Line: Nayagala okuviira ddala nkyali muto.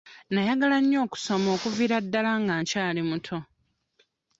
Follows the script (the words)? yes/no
no